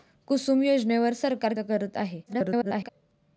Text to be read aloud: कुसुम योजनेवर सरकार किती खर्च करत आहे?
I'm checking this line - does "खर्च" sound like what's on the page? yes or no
no